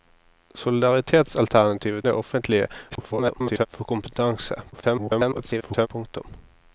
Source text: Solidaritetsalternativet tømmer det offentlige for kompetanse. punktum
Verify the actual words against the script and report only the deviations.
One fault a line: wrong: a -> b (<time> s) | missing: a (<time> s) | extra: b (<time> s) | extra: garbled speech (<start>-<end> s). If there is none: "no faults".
missing: tømmer (2.0 s)
extra: garbled speech (2.9-3.7 s)
extra: garbled speech (4.7-5.9 s)